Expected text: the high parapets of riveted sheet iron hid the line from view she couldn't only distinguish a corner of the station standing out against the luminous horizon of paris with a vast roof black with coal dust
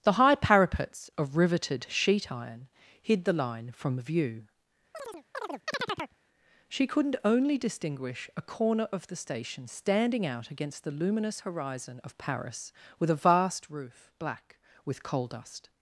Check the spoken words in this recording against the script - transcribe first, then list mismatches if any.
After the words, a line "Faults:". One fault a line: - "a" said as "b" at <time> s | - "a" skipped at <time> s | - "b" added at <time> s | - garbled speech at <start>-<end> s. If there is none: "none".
the high parapets of riveted sheet iron hid the line from view she couldn't only distinguish a corner of the station standing out against the luminous horizon of paris with a vast roof black with coal dust
Faults:
none